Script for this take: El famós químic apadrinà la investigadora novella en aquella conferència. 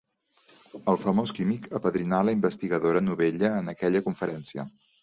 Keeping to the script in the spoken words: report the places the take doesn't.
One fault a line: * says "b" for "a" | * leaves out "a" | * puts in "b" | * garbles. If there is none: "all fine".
all fine